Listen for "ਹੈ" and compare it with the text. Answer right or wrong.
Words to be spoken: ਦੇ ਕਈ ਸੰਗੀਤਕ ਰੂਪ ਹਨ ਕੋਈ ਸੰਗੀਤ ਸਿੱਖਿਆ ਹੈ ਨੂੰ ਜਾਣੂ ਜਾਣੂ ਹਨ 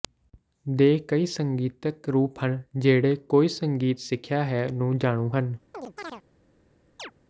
right